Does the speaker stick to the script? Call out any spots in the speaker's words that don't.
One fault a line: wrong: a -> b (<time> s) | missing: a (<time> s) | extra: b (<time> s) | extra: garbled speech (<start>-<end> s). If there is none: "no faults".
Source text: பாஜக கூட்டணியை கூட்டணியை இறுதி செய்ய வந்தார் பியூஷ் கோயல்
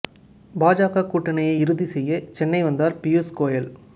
missing: கூட்டணியை (1.5 s)
extra: சென்னை (2.3 s)